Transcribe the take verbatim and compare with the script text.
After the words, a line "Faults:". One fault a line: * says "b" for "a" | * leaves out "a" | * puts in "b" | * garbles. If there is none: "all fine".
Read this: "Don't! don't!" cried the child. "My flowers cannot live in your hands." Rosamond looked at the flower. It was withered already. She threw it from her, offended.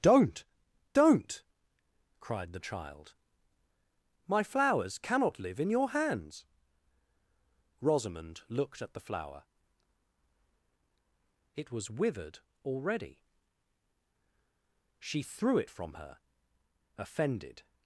"Don't! don't!" cried the child. "My flowers cannot live in your hands." Rosamond looked at the flower. It was withered already. She threw it from her, offended.
Faults:
all fine